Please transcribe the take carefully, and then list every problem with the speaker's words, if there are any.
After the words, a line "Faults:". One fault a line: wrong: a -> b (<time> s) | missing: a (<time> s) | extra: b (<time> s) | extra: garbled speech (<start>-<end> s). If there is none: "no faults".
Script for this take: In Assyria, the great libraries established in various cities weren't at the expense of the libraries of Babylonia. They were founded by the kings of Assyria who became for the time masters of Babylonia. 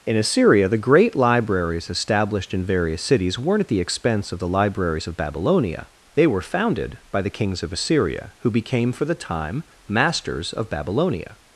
In Assyria, the great libraries established in various cities weren't at the expense of the libraries of Babylonia. They were founded by the kings of Assyria who became for the time masters of Babylonia.
Faults:
no faults